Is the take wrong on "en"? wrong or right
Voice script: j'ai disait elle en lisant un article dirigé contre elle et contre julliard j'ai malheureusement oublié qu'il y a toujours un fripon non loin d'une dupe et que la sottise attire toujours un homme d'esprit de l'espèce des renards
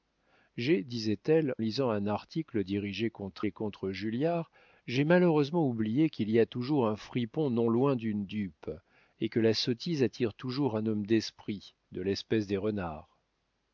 wrong